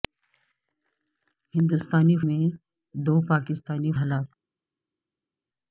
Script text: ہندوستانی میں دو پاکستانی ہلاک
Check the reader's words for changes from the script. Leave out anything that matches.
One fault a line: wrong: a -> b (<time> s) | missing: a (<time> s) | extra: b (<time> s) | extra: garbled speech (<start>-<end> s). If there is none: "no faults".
no faults